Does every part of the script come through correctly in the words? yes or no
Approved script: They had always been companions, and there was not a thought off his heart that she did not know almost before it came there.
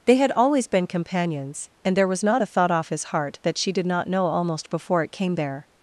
yes